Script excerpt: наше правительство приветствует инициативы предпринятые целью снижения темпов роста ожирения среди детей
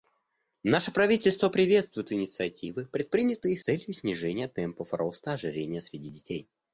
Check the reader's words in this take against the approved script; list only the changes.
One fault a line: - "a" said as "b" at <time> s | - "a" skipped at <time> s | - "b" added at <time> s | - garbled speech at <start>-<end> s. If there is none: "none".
none